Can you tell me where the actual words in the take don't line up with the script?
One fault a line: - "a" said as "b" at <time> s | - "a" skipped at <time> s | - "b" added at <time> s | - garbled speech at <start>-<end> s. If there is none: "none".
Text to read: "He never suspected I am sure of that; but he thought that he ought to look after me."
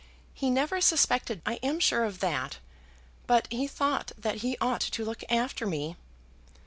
none